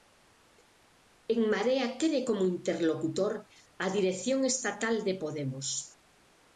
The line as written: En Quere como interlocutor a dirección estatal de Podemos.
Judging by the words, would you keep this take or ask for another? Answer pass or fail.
fail